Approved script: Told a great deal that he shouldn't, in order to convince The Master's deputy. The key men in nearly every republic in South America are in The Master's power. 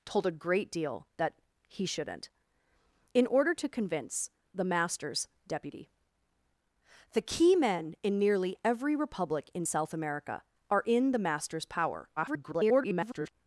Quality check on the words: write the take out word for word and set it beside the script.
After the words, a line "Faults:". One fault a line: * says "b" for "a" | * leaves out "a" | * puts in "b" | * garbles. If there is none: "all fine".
Told a great deal that he shouldn't, in order to convince The Master's deputy. The key men in nearly every republic in South America are in The Master's power. [garbled]
Faults:
* garbles